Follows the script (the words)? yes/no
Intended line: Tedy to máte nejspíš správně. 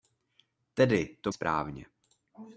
no